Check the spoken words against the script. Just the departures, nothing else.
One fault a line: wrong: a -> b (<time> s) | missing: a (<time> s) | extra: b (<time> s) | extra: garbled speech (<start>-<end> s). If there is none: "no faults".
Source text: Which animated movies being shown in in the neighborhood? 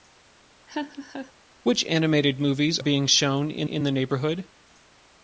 no faults